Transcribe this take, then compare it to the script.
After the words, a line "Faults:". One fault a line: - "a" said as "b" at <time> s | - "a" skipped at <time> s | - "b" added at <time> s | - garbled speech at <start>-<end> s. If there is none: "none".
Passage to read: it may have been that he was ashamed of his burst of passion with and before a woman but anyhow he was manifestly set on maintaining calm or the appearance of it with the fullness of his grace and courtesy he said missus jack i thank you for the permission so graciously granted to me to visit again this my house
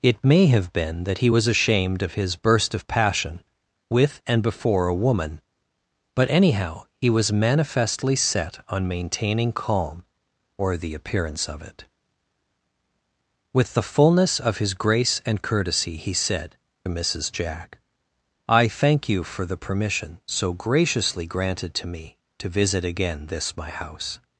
it may have been that he was ashamed of his burst of passion with and before a woman but anyhow he was manifestly set on maintaining calm or the appearance of it with the fullness of his grace and courtesy he said missus jack i thank you for the permission so graciously granted to me to visit again this my house
Faults:
none